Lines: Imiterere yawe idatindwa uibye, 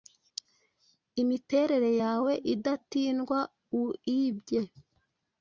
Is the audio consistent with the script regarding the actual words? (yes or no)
yes